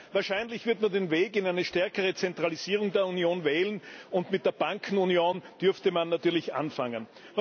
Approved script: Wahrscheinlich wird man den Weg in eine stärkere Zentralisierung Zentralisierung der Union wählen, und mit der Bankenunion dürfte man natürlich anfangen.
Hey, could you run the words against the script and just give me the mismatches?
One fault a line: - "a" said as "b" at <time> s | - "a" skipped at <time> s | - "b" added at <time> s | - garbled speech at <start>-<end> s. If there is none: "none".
- "Zentralisierung" skipped at 2.9 s